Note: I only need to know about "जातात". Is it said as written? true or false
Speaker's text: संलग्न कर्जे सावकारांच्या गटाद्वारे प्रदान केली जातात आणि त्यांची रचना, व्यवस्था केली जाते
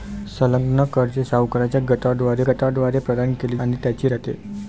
false